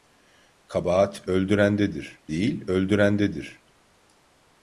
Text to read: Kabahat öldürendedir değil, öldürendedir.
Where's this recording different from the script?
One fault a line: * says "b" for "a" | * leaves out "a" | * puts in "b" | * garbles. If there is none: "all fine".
all fine